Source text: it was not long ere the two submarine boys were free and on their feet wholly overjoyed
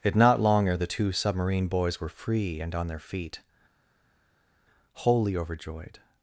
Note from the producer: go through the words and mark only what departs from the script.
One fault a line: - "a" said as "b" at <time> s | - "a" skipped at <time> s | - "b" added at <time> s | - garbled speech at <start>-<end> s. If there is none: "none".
- "was" skipped at 0.1 s